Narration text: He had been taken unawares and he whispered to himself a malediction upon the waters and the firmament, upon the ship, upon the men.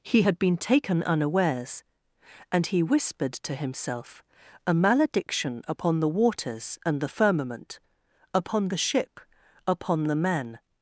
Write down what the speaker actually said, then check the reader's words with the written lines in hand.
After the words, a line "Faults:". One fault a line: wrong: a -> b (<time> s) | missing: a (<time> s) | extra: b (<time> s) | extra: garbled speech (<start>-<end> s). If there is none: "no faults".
He had been taken unawares and he whispered to himself a malediction upon the waters and the firmament, upon the ship, upon the men.
Faults:
no faults